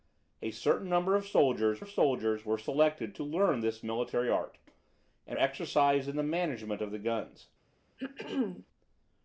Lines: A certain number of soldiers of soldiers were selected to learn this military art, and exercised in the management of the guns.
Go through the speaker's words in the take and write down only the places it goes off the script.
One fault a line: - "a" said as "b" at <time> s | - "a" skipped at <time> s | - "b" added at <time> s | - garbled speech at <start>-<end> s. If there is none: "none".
none